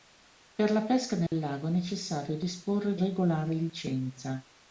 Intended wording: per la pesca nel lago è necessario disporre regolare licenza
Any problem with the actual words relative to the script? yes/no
no